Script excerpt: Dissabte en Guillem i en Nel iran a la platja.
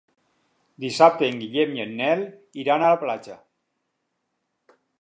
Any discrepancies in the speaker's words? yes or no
no